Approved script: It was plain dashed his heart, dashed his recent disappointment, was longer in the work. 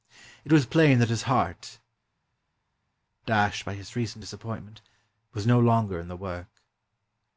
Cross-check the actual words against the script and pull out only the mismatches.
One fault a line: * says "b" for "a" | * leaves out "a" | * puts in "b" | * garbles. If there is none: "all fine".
* says "that" for "dashed"
* puts in "by"
* puts in "no"